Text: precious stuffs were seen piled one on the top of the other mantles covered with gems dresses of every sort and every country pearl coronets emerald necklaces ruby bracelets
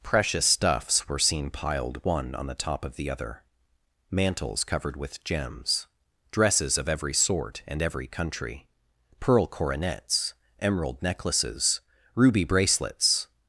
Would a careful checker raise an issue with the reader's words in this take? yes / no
no